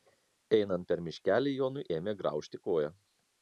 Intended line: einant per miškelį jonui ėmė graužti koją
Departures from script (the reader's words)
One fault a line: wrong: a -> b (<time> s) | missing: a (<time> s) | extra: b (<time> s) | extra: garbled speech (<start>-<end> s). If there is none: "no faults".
no faults